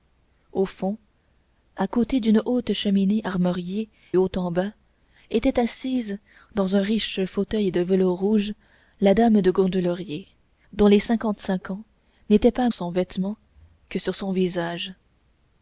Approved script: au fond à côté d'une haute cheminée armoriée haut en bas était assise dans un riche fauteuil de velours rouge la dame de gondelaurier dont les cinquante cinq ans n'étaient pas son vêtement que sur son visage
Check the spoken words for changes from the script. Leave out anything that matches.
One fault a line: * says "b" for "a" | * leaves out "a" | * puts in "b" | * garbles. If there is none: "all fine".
all fine